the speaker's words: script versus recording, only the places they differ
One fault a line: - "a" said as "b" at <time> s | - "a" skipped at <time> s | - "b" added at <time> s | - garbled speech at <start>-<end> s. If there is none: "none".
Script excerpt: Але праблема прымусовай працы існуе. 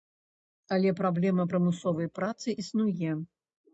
none